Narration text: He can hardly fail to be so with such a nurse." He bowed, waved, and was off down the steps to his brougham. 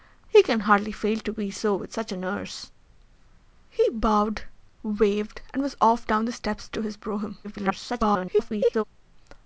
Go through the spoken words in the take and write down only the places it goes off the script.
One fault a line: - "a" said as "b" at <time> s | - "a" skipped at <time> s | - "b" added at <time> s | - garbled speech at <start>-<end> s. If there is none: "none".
- garbled speech at 7.4-8.8 s